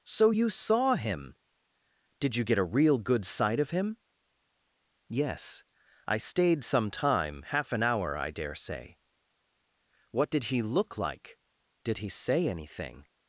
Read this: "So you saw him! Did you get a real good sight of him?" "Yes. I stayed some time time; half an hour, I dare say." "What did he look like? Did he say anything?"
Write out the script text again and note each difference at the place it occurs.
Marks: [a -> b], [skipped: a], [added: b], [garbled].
"So you saw him! Did you get a real good sight of him?" "Yes. I stayed some time [skipped: time;] half an hour, I dare say." "What did he look like? Did he say anything?"